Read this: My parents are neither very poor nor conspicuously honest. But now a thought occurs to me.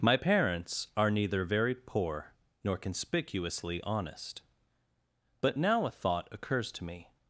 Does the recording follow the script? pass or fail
pass